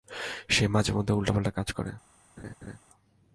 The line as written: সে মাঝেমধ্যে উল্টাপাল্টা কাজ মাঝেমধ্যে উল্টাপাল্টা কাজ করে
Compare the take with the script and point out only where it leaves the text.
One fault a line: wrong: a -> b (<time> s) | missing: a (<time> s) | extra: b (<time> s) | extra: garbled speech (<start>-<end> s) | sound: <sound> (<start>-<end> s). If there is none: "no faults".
missing: মাঝেমধ্যে উল্টাপাল্টা কাজ (1.7 s)
sound: laugh (2.4-2.8 s)